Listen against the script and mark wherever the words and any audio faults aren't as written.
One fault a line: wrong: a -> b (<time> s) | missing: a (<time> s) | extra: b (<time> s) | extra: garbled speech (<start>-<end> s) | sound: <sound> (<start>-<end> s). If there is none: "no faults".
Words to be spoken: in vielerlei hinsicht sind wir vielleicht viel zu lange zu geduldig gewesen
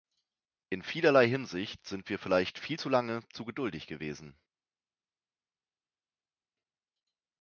no faults